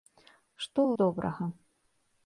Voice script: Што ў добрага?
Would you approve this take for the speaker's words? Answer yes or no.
yes